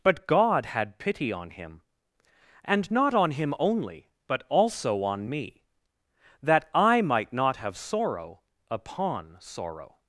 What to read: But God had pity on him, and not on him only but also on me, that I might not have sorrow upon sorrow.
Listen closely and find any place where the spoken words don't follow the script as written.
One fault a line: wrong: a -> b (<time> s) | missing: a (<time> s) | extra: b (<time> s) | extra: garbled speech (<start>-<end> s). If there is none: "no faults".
no faults